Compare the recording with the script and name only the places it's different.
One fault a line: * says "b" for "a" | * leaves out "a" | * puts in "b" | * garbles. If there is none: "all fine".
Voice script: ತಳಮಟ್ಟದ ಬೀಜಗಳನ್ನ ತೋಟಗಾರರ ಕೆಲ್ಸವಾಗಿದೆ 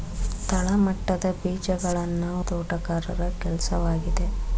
all fine